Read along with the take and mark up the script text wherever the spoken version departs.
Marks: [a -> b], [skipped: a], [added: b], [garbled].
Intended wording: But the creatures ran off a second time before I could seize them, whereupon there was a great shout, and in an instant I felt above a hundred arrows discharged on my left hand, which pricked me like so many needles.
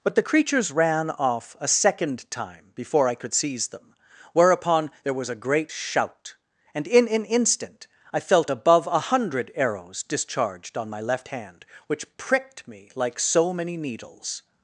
But the creatures ran off a second time before I could seize them, whereupon there was a great shout, and in an instant I felt above a hundred arrows discharged on my left hand, which pricked me like so many needles.